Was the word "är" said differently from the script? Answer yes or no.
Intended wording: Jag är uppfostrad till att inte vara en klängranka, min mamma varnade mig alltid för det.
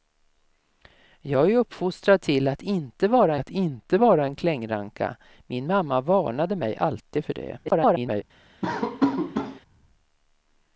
no